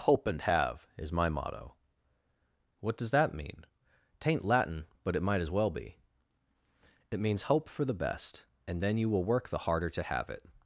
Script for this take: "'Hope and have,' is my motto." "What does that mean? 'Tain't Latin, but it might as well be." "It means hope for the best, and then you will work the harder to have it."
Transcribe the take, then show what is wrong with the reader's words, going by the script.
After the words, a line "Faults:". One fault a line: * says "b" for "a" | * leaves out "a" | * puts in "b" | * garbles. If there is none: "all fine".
"'Hope and have,' is my motto." "What does that mean? 'Tain't Latin, but it might as well be." "It means hope for the best, and then you will work the harder to have it."
Faults:
all fine